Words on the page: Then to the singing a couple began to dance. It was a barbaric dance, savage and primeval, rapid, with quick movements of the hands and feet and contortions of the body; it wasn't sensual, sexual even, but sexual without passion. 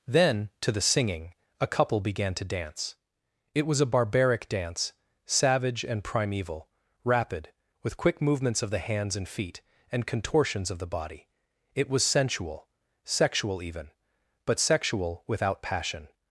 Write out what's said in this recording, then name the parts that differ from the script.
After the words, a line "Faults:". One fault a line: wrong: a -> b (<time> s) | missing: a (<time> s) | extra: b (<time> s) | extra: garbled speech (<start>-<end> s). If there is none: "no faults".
Then to the singing a couple began to dance. It was a barbaric dance, savage and primeval, rapid, with quick movements of the hands and feet and contortions of the body; it was sensual, sexual even, but sexual without passion.
Faults:
wrong: wasn't -> was (11.9 s)